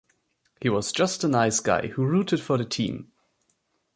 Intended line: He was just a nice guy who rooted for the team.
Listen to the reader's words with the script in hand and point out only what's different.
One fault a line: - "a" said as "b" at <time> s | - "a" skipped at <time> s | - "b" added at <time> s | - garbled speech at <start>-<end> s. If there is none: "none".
none